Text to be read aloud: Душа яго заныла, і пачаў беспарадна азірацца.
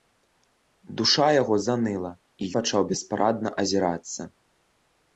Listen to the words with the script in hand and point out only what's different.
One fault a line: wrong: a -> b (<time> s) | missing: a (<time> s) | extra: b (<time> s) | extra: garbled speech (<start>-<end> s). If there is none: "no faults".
no faults